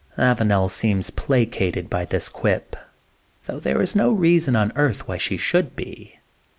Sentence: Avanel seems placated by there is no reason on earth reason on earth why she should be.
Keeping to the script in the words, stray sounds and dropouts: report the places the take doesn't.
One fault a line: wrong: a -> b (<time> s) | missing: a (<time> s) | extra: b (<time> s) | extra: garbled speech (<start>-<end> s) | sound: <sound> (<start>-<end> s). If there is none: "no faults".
extra: this quip though (2.0 s)
missing: reason on earth (5.1 s)